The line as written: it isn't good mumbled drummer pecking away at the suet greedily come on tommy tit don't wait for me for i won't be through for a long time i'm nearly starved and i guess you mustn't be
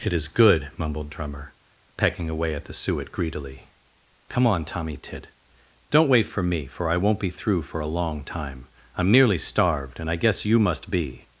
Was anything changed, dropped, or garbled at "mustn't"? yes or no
yes